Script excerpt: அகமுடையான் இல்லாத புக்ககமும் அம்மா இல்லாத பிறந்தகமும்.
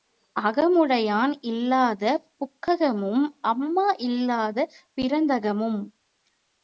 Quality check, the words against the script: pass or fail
pass